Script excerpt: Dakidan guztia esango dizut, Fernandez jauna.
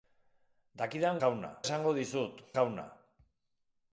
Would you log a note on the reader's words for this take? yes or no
yes